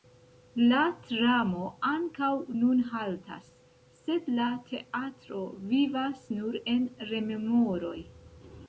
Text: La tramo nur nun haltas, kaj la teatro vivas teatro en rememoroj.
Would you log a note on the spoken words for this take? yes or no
yes